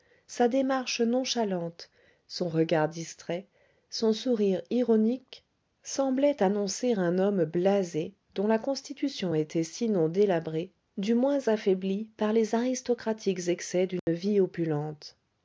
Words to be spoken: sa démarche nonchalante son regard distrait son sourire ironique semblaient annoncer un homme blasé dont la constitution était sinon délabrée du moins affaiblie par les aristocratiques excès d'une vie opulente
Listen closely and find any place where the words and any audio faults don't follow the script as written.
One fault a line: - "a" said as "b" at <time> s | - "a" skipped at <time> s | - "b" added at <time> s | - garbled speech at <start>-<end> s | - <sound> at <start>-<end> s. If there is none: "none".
- dropout at 14.0-14.1 s